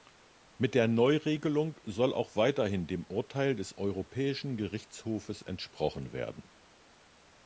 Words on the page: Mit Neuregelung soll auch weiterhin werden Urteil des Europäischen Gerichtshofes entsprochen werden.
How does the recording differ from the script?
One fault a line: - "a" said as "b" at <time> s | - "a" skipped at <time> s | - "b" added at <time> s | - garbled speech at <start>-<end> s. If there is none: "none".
- "der" added at 0.7 s
- "werden" said as "dem" at 2.9 s